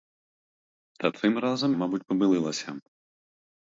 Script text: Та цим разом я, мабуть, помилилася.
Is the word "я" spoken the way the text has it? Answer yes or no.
no